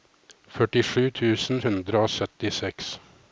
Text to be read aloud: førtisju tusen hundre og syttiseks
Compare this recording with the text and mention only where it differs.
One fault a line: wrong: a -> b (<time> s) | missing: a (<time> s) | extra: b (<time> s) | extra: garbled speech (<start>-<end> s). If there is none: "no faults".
no faults